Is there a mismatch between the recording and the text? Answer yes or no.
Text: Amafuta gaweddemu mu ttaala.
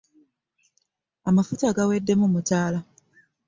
no